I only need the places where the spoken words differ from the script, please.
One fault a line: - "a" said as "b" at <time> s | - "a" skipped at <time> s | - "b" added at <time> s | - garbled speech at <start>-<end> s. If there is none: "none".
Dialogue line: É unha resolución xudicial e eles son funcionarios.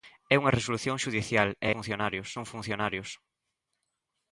- "eles" said as "funcionarios" at 1.7 s